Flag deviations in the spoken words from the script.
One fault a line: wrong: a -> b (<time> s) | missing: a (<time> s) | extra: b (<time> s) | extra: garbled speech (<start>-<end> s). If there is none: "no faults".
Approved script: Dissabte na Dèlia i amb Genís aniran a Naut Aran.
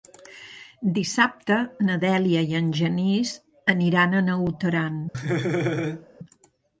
wrong: amb -> en (2.6 s)